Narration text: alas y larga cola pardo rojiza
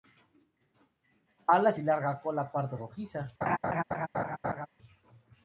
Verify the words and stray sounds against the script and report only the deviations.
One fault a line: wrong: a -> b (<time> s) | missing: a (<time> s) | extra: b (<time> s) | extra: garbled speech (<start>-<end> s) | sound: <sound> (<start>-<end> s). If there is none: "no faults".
sound: laugh (3.4-4.7 s)